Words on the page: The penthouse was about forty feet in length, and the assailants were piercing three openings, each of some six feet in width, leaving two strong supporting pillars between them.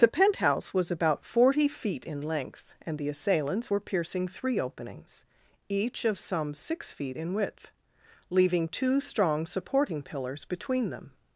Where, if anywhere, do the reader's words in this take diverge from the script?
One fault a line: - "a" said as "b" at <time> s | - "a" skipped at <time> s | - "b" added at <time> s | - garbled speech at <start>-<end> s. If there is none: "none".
none